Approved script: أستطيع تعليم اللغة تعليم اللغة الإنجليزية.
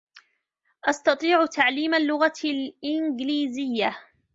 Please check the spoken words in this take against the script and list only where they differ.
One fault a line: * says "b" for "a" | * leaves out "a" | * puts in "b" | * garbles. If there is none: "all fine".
* leaves out "تعليم اللغة"